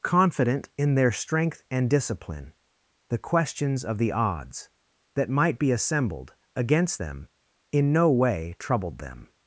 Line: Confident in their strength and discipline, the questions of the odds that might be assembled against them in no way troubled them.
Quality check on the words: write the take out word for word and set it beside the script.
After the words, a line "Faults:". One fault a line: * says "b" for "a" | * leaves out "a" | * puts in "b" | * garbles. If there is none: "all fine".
Confident in their strength and discipline, the questions of the odds that might be assembled against them in no way troubled them.
Faults:
all fine